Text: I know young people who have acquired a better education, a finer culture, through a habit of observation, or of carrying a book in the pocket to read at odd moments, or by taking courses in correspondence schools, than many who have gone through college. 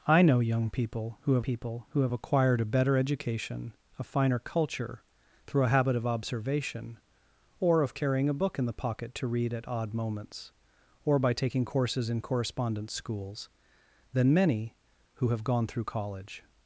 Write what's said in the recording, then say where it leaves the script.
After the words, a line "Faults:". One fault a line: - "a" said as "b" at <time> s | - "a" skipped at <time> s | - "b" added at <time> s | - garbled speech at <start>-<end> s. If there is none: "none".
I know young people who have people who have acquired a better education, a finer culture, through a habit of observation, or of carrying a book in the pocket to read at odd moments, or by taking courses in correspondence schools, than many who have gone through college.
Faults:
- "people who have" added at 1.4 s